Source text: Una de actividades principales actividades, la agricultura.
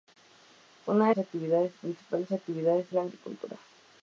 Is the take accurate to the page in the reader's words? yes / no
yes